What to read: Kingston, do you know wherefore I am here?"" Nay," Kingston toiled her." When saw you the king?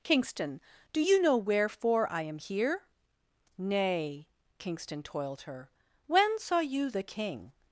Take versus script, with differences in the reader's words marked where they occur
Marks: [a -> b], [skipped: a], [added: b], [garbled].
Kingston, do you know wherefore I am here?"" Nay," Kingston toiled her." When saw you the king?